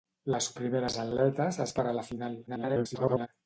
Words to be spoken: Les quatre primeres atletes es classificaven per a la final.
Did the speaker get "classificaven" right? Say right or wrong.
wrong